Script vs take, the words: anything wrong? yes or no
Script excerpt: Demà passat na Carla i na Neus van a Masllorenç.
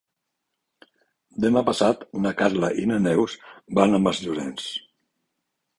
no